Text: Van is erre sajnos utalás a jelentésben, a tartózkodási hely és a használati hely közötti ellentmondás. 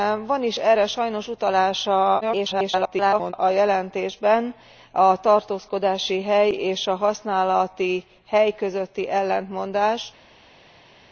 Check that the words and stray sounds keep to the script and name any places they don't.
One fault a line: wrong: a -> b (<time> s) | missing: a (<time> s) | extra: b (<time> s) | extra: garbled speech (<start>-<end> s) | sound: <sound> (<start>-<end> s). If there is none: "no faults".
extra: garbled speech (2.2-3.3 s)